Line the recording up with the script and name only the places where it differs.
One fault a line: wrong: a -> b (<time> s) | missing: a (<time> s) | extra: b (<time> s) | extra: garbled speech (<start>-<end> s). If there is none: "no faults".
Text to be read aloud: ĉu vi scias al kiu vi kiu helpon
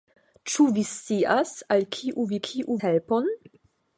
no faults